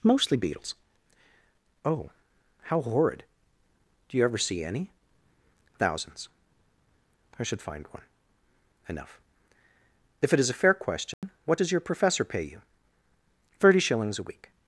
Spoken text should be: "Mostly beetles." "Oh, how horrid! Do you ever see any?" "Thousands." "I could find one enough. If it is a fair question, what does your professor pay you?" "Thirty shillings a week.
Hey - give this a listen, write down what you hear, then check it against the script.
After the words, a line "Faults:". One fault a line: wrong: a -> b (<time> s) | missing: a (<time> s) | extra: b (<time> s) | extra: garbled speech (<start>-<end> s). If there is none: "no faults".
"Mostly beetles." "Oh, how horrid! Do you ever see any?" "Thousands." "I should find one enough. If it is a fair question, what does your professor pay you?" "Thirty shillings a week.
Faults:
wrong: could -> should (7.4 s)